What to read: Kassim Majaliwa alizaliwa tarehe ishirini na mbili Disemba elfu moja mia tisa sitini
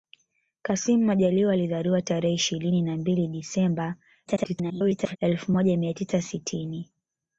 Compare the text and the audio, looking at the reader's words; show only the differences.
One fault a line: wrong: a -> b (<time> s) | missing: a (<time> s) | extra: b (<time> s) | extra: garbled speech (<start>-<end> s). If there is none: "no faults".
extra: garbled speech (4.3-5.2 s)